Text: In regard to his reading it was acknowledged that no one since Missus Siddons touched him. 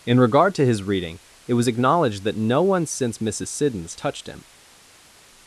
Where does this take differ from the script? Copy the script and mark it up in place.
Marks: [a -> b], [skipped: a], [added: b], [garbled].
In regard to his reading it was acknowledged that no one since Missus Siddons touched him.